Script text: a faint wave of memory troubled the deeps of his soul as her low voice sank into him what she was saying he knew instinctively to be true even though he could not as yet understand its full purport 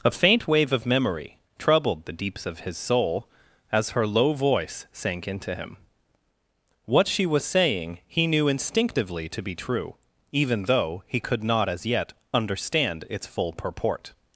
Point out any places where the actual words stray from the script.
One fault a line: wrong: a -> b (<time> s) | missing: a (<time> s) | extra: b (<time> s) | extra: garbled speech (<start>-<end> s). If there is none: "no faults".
no faults